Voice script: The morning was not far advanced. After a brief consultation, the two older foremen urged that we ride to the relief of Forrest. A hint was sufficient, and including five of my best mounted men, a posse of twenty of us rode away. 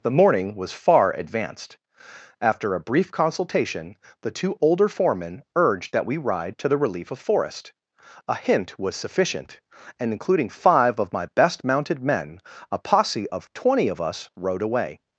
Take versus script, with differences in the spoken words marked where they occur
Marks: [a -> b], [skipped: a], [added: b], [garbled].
The morning was [skipped: not] far advanced. After a brief consultation, the two older foremen urged that we ride to the relief of Forrest. A hint was sufficient, and including five of my best mounted men, a posse of twenty of us rode away.